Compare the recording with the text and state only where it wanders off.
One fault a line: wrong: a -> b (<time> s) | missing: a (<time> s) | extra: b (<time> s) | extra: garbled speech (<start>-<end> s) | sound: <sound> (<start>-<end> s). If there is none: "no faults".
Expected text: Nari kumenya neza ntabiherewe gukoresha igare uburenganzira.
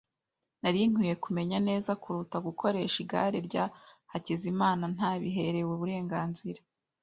extra: nkwiye (0.9 s)
wrong: ntabiherewe -> kuruta (2.0 s)
extra: rya Hakizimana ntabiherewe (3.5 s)